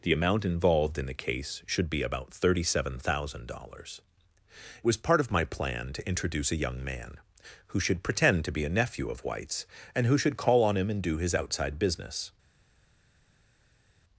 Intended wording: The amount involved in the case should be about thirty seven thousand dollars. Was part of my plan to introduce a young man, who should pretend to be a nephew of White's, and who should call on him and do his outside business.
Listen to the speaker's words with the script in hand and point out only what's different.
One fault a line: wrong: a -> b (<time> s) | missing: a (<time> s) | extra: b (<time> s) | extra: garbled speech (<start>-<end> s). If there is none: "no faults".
no faults